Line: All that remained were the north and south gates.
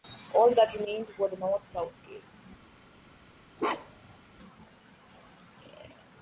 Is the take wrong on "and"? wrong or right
wrong